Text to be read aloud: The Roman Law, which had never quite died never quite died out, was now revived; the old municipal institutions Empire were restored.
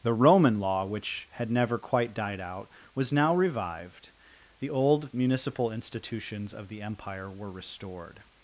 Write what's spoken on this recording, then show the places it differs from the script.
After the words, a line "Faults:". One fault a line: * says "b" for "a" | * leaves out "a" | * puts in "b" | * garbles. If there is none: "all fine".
The Roman Law, which had never quite died out, was now revived; the old municipal institutions of the Empire were restored.
Faults:
* leaves out "never quite died"
* puts in "of the"